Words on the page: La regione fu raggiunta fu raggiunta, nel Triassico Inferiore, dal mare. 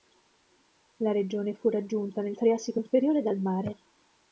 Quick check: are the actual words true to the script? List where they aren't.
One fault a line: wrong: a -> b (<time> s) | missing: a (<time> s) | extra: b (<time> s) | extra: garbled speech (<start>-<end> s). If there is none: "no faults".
missing: fu raggiunta (2.2 s)